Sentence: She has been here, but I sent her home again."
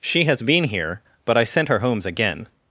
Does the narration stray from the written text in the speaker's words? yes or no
yes